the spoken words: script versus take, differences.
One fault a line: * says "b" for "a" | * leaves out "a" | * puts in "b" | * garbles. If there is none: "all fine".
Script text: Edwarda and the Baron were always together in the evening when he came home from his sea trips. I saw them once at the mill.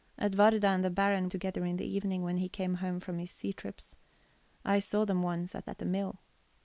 * leaves out "were always"
* puts in "at"